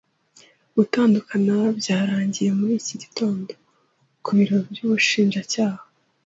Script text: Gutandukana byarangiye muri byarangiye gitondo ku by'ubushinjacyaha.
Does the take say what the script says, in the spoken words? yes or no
no